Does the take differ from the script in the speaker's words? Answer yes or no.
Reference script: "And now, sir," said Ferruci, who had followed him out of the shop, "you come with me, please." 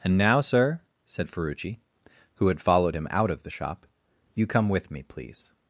no